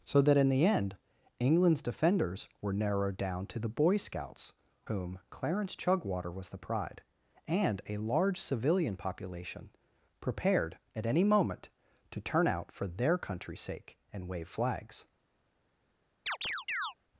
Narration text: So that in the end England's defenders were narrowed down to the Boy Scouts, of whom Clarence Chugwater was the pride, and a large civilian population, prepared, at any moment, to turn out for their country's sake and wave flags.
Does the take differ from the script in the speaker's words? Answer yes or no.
yes